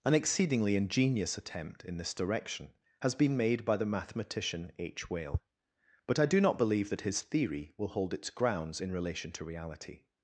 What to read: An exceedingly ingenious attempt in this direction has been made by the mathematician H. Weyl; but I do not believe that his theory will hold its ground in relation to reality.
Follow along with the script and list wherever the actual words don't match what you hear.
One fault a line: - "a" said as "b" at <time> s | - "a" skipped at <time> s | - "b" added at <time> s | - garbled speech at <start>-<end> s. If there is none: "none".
- "ground" said as "grounds" at 8.3 s